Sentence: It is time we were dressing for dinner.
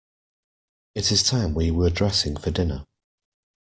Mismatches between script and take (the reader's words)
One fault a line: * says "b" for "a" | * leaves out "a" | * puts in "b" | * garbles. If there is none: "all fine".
all fine